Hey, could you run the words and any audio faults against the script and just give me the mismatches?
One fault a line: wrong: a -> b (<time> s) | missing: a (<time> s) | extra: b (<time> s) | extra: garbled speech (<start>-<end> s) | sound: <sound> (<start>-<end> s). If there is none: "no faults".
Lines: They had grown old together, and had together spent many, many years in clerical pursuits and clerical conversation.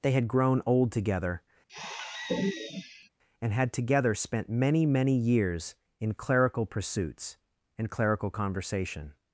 sound: sigh (1.7-3.1 s)